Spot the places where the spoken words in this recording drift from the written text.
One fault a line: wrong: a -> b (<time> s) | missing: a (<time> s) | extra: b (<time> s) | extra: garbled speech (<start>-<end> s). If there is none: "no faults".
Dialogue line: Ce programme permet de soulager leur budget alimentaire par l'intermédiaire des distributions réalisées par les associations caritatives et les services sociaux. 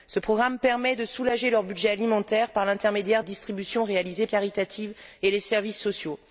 missing: des (3.2 s)
missing: par les associations (4.3 s)